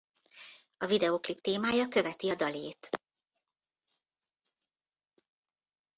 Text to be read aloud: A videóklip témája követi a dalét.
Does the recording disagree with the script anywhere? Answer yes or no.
no